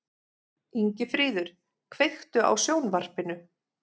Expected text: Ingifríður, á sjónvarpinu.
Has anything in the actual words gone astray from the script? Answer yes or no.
yes